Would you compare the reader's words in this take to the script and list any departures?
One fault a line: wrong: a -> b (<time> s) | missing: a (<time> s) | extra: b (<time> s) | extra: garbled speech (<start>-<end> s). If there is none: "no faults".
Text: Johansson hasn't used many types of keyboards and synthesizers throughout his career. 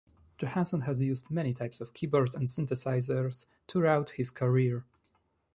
wrong: hasn't -> has (0.8 s)